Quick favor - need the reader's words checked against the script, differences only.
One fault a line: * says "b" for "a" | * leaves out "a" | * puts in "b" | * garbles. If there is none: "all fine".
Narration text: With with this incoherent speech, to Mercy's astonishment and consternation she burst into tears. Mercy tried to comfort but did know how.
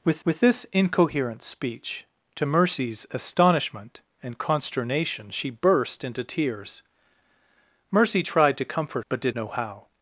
all fine